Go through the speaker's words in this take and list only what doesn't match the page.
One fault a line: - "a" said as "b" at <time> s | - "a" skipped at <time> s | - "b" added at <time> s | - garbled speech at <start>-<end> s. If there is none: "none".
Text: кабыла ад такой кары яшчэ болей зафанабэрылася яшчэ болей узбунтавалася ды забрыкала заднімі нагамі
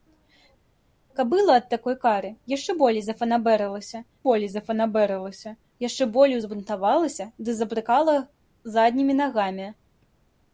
- "болей зафанабэрылася" added at 4.3 s